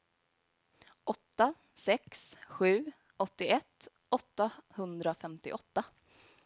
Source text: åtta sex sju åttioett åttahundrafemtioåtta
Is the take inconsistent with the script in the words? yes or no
no